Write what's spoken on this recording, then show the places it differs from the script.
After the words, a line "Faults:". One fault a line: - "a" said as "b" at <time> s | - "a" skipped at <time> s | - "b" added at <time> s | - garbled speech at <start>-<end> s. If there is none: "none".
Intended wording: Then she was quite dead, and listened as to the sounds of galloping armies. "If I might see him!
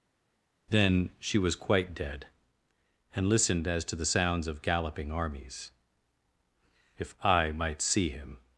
Then she was quite dead, and listened as to the sounds of galloping armies. "If I might see him!
Faults:
none